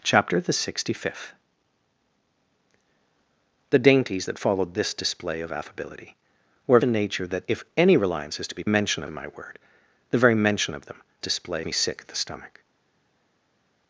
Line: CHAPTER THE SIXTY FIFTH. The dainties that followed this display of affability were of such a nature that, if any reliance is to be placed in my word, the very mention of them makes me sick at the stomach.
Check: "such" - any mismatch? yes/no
yes